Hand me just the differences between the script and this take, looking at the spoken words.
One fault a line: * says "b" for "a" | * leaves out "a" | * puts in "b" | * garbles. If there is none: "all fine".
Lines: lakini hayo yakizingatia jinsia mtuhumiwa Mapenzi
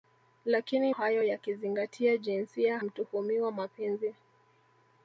all fine